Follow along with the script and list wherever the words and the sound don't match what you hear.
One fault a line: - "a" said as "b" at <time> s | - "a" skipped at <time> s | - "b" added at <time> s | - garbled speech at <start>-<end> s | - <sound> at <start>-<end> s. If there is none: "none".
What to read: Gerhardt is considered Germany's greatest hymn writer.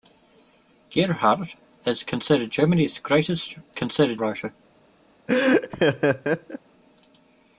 - "hymn" said as "considered" at 3.7 s
- laugh at 5.3-6.6 s